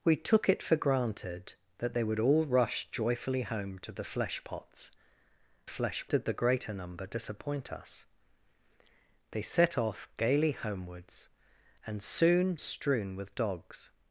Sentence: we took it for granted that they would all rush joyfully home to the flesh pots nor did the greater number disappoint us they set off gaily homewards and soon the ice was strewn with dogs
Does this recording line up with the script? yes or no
no